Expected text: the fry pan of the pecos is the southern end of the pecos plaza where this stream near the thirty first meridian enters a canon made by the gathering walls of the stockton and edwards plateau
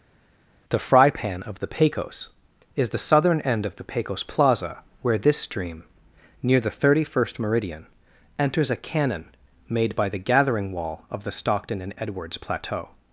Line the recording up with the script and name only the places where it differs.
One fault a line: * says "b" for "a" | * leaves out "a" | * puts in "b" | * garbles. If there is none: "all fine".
* says "wall" for "walls"